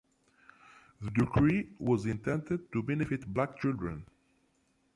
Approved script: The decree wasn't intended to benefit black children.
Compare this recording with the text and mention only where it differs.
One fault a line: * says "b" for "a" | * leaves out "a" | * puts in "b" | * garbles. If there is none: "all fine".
* says "was" for "wasn't"